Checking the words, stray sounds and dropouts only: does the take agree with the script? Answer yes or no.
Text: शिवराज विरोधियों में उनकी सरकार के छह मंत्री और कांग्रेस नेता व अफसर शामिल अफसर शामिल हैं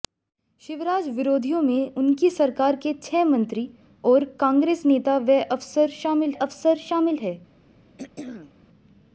no